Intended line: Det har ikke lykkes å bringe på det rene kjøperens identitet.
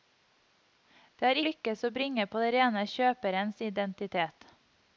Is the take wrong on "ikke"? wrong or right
wrong